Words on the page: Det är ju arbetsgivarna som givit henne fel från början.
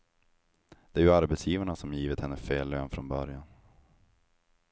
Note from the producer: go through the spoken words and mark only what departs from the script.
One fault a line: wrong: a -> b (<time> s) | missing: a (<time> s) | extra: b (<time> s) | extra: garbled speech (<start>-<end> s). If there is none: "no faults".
extra: lön (2.7 s)